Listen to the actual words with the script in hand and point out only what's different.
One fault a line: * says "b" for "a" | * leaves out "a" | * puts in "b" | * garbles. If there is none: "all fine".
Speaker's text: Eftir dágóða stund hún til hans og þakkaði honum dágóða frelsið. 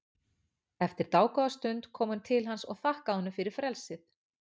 * puts in "kom"
* says "fyrir" for "dágóða"